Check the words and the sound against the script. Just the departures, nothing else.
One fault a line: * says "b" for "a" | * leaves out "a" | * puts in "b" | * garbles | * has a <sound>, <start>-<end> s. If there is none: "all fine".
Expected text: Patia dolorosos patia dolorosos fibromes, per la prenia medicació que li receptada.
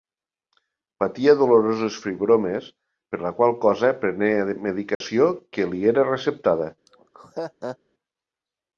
* leaves out "patia dolorosos"
* puts in "qual cosa"
* has a dropout, 4.9-5.0 s
* puts in "era"
* has a laugh, 6.9-7.8 s